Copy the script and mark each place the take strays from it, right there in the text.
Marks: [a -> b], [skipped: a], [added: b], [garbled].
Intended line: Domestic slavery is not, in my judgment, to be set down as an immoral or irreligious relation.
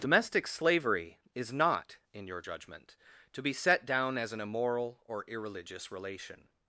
Domestic slavery is not, in [my -> your] judgment, to be set down as an immoral or irreligious relation.